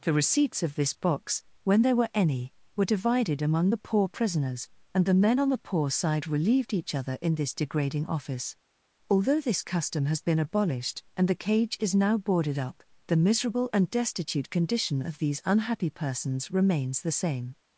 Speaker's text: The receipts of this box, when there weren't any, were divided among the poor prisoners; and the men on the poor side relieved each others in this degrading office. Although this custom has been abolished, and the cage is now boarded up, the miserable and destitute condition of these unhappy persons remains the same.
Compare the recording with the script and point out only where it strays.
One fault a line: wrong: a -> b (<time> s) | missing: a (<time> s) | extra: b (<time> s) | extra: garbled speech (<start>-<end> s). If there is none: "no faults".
wrong: weren't -> were (1.9 s)
wrong: others -> other (6.9 s)